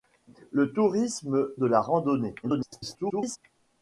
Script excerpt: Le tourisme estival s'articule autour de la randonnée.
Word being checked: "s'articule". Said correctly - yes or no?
no